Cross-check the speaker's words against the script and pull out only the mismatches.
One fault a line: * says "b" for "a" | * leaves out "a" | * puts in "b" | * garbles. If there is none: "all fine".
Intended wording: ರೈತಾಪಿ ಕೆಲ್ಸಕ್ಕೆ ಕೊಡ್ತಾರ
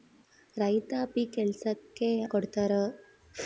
all fine